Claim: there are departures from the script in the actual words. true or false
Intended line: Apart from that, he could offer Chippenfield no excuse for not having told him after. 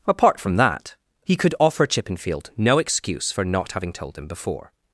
true